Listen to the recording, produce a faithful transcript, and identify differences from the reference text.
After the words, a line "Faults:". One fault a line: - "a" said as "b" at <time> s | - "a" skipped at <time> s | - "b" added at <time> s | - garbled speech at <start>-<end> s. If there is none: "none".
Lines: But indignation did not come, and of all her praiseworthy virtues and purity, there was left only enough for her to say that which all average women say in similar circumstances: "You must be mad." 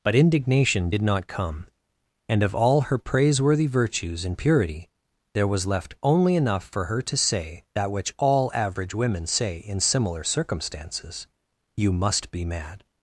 But indignation did not come, and of all her praiseworthy virtues and purity, there was left only enough for her to say that which all average women say in similar circumstances: "You must be mad."
Faults:
none